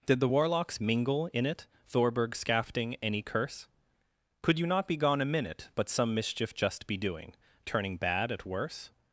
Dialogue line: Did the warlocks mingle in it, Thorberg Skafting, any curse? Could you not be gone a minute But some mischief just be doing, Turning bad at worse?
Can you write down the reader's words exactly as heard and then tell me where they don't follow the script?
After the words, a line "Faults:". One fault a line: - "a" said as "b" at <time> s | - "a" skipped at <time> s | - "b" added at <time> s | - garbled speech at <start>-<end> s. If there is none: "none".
Did the warlocks mingle in it, Thorberg Skafting, any curse? Could you not be gone a minute But some mischief just be doing, Turning bad at worse?
Faults:
none